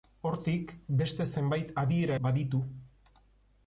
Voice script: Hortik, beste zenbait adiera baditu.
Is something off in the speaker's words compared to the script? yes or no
no